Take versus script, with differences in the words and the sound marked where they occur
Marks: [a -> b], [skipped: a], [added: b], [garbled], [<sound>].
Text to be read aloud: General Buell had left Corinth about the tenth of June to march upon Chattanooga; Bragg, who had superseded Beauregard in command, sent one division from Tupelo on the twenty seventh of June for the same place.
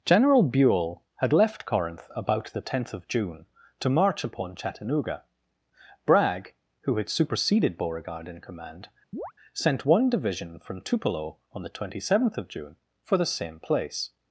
General Buell had left Corinth about the tenth of June to march upon Chattanooga; Bragg, who had superseded Beauregard in command, [chirp] sent one division from Tupelo on the twenty seventh of June for the same place.